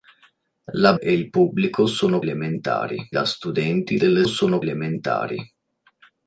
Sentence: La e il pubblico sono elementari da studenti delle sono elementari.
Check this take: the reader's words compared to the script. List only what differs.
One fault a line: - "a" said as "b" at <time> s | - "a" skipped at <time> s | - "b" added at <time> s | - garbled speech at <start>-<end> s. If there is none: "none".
none